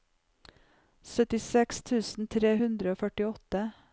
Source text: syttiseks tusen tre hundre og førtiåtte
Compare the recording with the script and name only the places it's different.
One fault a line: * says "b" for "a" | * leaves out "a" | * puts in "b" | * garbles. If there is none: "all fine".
all fine